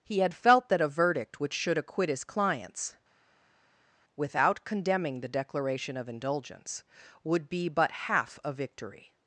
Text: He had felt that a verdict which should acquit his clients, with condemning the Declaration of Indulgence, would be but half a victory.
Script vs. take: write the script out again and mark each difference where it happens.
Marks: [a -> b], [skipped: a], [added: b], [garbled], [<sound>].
He had felt that a verdict which should acquit his clients, [with -> without] condemning the Declaration of Indulgence, would be but half a victory.